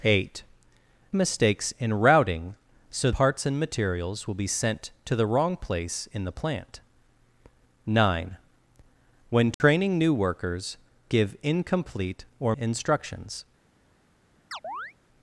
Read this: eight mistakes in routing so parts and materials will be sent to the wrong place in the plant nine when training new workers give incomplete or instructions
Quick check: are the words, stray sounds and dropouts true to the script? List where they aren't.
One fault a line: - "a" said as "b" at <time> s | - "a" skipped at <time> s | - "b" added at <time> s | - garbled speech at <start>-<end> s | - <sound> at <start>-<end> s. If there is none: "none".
- dropout at 9.5-9.6 s
- chirp at 14.5-14.9 s